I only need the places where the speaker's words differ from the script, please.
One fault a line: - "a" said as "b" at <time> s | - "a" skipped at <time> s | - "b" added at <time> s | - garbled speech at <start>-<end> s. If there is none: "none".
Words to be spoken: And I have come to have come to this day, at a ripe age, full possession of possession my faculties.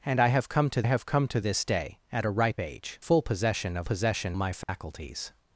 none